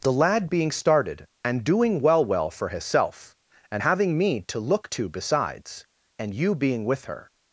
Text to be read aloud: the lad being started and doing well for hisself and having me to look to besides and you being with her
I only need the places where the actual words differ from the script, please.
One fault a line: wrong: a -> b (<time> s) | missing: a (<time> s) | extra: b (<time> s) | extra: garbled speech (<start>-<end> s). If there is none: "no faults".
extra: well (2.2 s)